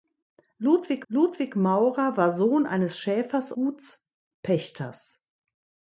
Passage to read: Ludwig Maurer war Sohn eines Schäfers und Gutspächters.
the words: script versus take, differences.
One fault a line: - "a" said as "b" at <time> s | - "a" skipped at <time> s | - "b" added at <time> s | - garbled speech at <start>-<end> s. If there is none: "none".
- "ludwig" added at 1.1 s
- "und" skipped at 3.5 s